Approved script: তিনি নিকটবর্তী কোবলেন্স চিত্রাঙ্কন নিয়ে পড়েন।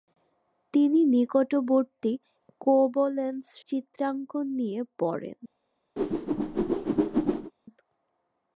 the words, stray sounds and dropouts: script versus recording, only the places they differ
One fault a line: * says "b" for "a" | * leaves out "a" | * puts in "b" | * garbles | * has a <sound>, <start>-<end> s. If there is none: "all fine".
* has a whoosh, 6.0-7.5 s